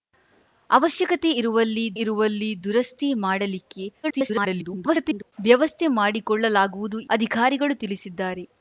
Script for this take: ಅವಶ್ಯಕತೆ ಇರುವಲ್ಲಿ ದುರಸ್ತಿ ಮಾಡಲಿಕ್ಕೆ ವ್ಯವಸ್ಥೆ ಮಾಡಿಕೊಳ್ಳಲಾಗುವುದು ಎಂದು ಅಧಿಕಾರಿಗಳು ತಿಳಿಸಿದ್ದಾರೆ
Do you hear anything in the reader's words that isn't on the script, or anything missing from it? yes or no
yes